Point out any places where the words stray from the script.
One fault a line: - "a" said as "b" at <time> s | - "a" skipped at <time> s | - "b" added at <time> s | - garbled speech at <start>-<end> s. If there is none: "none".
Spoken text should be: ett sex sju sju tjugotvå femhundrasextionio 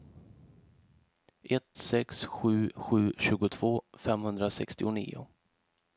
none